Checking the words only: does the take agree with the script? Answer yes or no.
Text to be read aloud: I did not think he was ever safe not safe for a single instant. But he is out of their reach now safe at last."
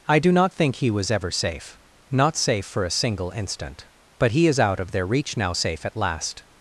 no